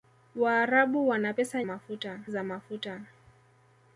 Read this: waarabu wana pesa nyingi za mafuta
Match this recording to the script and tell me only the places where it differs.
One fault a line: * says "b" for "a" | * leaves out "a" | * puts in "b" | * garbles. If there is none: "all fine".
* says "mafuta" for "nyingi"